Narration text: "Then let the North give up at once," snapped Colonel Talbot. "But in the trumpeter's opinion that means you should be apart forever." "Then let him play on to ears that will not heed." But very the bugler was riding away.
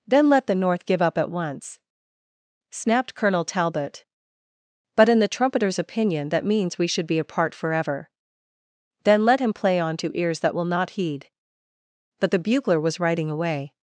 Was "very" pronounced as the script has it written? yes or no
no